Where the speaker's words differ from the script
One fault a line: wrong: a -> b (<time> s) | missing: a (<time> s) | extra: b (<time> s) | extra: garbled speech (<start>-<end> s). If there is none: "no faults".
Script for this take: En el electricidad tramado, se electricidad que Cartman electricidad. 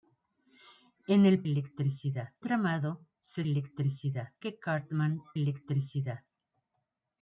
no faults